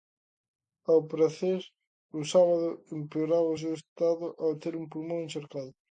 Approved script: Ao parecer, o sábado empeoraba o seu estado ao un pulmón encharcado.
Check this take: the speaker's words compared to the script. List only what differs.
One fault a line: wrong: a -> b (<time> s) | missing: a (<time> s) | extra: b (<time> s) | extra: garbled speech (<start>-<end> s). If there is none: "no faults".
extra: ter (4.6 s)